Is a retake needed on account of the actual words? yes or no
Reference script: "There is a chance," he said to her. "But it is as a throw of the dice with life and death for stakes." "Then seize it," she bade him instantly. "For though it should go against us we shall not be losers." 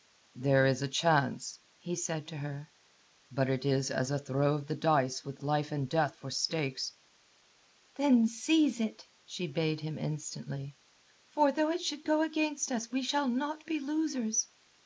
no